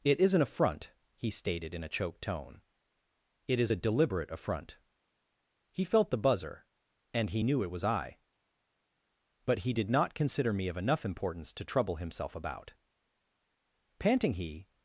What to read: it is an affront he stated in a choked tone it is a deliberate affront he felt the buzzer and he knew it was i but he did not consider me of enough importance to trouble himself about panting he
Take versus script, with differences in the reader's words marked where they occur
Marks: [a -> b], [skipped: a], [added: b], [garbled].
it is an affront he stated in a choked tone it is a deliberate affront he felt the buzzer and he knew it was i but he did not consider me of enough importance to trouble himself about panting he